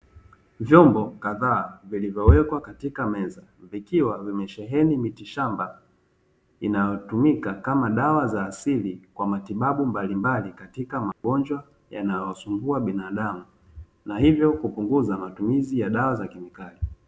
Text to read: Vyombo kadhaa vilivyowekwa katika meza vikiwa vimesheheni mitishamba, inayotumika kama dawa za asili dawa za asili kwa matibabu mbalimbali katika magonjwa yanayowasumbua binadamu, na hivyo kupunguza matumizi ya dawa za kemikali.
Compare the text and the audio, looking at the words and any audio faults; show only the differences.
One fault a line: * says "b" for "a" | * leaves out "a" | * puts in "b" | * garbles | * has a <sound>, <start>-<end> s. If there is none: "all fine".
* leaves out "dawa za asili"
* has a dropout, 11.1-11.2 s